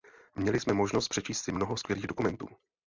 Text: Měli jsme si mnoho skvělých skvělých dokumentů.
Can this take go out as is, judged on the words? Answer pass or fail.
fail